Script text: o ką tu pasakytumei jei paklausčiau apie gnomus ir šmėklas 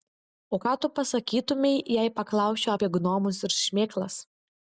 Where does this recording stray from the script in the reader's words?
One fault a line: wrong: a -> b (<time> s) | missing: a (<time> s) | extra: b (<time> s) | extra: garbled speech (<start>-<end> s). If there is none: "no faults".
no faults